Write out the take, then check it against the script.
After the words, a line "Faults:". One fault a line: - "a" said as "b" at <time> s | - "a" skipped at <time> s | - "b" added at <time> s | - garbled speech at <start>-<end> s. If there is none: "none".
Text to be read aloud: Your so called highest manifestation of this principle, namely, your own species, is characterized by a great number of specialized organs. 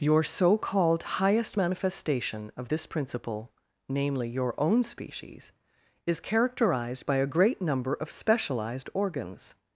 Your so called highest manifestation of this principle, namely, your own species, is characterized by a great number of specialized organs.
Faults:
none